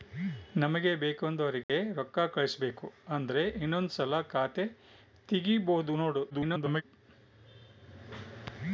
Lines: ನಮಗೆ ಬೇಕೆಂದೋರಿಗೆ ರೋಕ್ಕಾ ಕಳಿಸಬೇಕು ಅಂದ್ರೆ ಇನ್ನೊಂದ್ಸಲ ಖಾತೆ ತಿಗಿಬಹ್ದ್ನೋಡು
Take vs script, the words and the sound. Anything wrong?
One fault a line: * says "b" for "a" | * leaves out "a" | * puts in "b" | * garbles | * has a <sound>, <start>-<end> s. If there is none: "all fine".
* has a dropout, 1.6-1.7 s
* garbles